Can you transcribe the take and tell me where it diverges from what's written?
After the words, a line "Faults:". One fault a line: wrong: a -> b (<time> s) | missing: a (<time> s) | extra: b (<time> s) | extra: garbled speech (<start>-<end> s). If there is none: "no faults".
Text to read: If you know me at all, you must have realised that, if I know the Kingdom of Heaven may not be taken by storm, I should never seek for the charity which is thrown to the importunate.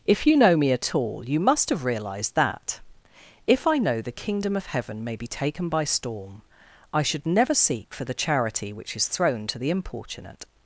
If you know me at all, you must have realised that, if I know the Kingdom of Heaven may be taken by storm, I should never seek for the charity which is thrown to the importunate.
Faults:
missing: not (5.2 s)